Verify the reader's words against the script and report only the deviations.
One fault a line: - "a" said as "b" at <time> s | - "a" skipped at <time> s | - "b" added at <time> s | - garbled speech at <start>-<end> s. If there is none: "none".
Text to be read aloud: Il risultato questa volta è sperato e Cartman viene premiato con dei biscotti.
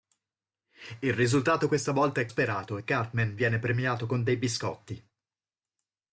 none